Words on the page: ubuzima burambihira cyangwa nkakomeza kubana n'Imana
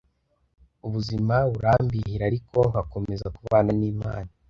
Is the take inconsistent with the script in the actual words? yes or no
yes